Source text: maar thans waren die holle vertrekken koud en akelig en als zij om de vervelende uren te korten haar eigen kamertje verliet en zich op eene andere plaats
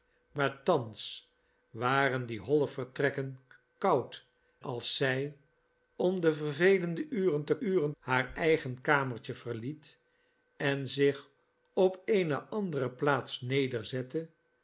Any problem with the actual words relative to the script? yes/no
yes